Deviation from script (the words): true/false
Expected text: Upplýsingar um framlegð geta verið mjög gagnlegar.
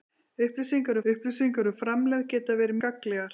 true